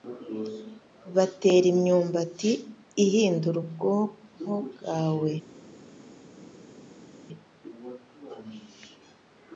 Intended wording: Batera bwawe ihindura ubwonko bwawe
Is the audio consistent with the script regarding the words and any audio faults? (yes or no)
no